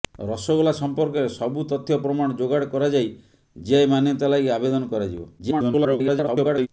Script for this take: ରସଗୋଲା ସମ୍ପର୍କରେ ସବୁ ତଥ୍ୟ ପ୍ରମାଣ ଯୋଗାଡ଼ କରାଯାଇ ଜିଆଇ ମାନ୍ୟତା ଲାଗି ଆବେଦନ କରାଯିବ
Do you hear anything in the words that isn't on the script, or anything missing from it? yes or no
yes